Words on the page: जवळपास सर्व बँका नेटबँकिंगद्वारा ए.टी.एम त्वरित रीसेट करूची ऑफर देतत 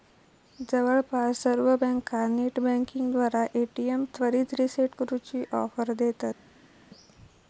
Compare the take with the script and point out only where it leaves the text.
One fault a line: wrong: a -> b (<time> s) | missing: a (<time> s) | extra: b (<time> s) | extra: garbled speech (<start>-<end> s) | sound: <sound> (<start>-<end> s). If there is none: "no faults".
no faults